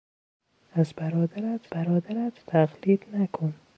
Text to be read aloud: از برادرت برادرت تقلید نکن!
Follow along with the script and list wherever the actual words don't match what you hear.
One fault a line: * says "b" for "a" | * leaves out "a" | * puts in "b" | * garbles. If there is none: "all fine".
all fine